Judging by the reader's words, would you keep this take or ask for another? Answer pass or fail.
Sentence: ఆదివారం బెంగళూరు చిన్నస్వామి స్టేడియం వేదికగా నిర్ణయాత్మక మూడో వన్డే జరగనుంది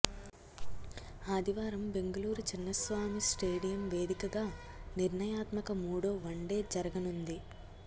pass